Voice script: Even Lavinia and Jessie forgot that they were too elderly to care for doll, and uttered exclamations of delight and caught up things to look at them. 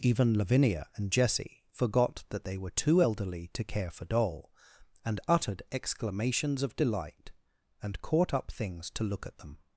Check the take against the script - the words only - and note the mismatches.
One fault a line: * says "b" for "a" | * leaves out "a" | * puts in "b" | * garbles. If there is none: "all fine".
all fine